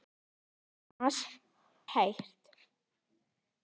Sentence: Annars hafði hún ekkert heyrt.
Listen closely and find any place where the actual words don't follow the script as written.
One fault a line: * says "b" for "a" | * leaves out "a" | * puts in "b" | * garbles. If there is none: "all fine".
* leaves out "hafði hún ekkert"